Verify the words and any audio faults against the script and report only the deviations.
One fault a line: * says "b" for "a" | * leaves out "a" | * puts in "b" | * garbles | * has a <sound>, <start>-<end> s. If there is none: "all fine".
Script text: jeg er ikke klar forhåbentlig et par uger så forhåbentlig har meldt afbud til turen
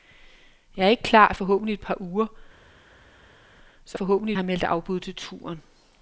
all fine